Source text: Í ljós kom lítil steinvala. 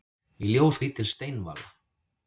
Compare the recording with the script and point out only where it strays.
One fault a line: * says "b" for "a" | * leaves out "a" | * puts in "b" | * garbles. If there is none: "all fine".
* leaves out "kom"